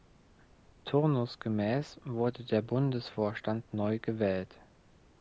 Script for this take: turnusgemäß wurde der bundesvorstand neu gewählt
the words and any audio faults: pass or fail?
pass